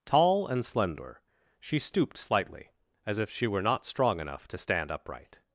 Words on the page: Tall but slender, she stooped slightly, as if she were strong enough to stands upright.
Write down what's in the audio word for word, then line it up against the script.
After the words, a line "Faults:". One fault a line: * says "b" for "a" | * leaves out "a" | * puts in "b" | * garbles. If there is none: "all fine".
Tall and slender, she stooped slightly, as if she were not strong enough to stand upright.
Faults:
* says "and" for "but"
* puts in "not"
* says "stand" for "stands"